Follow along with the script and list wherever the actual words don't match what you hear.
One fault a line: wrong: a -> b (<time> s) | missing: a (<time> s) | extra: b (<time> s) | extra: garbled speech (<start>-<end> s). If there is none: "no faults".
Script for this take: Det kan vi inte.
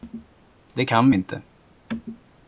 no faults